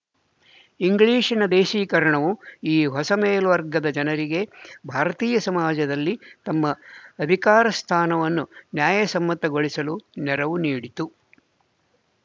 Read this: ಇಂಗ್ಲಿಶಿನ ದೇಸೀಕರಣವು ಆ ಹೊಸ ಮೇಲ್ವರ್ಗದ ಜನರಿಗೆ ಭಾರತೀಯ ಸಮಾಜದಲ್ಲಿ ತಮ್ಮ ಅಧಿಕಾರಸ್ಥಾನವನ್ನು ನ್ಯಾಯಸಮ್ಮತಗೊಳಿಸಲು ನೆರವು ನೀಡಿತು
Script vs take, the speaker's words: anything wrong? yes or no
yes